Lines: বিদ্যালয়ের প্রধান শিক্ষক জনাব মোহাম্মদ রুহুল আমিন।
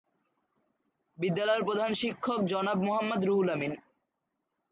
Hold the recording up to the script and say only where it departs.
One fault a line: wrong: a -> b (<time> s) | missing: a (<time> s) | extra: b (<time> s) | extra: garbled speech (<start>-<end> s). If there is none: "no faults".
no faults